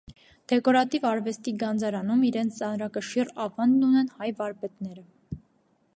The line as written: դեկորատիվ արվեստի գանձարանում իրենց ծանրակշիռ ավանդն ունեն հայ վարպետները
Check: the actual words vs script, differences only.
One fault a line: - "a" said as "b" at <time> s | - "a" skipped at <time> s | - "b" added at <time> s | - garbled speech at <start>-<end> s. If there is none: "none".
none